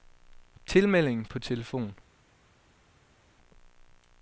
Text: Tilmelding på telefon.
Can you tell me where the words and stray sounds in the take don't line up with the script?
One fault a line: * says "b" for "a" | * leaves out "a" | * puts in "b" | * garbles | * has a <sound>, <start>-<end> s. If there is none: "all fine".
all fine